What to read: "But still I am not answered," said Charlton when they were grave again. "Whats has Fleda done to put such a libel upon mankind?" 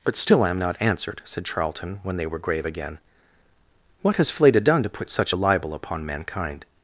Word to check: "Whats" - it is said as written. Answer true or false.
false